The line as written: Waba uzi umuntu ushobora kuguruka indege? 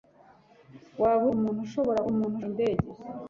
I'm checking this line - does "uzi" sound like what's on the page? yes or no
no